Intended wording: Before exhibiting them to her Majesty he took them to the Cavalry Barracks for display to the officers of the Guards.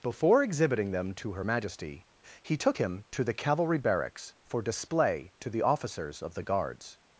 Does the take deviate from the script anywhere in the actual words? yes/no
yes